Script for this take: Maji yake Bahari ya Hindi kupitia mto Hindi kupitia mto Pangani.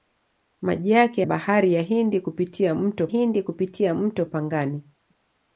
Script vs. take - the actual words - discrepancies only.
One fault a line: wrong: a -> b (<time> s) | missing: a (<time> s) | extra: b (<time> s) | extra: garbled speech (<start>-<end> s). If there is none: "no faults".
no faults